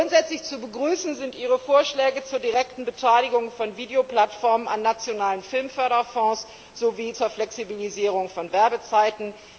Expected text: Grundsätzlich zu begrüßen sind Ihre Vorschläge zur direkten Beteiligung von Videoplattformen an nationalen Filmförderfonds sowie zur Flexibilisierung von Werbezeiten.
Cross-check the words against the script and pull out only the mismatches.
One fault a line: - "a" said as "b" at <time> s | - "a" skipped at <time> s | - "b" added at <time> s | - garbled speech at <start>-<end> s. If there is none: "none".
none